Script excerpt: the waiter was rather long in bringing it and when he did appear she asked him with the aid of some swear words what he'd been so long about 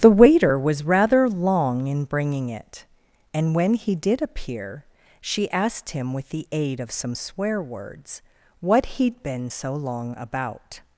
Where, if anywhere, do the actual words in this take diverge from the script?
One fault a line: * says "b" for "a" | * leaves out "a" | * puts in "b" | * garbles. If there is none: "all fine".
all fine